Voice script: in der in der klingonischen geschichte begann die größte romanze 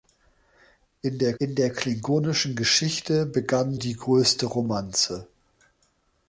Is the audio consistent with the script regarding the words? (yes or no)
yes